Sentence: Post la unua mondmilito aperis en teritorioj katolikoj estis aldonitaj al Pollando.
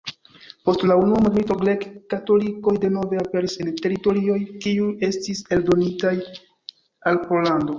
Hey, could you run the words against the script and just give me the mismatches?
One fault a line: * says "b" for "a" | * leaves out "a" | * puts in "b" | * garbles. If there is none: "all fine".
* puts in "grek katolikoj denove"
* says "kiuj" for "katolikoj"